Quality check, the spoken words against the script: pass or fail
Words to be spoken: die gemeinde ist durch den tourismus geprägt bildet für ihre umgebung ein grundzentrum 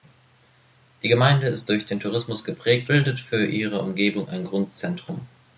pass